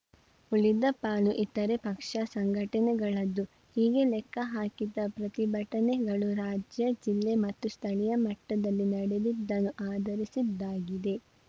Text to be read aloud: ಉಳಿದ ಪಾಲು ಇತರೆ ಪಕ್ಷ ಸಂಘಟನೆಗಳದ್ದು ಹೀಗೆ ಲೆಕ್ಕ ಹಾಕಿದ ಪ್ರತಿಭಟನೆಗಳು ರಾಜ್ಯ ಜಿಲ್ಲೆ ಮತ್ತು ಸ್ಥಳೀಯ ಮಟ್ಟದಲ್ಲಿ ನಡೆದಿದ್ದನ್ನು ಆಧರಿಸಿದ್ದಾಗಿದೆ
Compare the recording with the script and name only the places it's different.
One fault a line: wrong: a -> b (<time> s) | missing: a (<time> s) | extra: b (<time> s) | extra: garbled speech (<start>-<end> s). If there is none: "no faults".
no faults